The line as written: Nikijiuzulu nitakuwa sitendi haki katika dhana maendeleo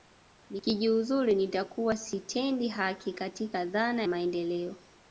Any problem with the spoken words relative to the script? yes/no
no